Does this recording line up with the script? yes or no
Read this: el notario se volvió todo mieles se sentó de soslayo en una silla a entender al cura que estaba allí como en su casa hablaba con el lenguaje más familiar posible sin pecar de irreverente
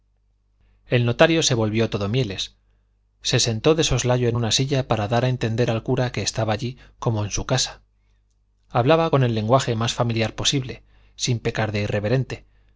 no